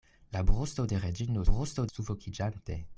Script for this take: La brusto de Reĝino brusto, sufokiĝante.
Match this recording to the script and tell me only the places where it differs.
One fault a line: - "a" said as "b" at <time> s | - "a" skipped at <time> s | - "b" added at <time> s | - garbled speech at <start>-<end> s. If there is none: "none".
none